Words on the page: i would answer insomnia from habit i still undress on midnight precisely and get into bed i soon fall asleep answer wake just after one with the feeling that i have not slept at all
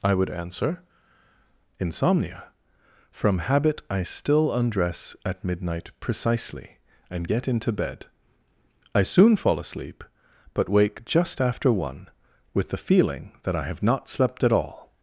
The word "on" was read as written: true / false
false